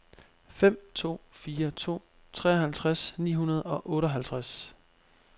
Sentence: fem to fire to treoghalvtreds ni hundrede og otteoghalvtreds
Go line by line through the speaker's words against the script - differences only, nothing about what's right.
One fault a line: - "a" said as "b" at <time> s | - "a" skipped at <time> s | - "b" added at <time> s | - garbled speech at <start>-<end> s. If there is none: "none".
none